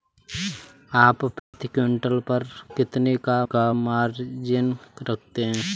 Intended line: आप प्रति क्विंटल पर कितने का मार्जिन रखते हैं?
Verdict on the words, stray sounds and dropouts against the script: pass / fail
fail